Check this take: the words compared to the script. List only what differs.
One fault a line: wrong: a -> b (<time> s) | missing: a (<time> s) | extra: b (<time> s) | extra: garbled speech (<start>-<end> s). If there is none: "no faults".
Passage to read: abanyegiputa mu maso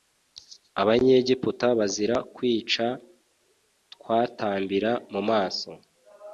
extra: bazira kwica twatambira (1.8 s)